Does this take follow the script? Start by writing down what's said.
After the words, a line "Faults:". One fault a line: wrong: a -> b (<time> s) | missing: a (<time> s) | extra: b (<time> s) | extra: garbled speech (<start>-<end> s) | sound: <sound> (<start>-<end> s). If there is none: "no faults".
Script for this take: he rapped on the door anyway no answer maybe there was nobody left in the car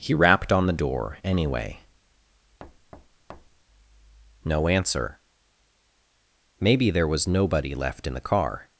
he rapped on the door anyway no answer maybe there was nobody left in the car
Faults:
sound: thud (2.6-3.6 s)